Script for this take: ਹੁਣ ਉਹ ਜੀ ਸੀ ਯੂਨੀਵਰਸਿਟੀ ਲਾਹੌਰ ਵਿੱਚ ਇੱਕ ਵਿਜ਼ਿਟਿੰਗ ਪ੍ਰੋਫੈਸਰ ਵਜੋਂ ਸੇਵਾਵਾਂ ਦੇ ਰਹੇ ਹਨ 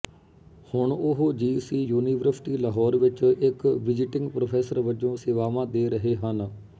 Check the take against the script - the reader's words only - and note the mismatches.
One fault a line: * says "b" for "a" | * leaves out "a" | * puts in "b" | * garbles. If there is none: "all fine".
all fine